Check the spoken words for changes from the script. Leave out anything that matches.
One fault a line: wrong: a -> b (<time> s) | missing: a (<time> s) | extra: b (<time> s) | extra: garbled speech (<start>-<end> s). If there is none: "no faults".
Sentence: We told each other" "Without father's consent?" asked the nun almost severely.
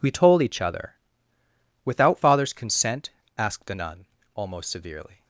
no faults